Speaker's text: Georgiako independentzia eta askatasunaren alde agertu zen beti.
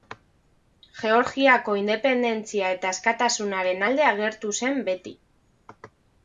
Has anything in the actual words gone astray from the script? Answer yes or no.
no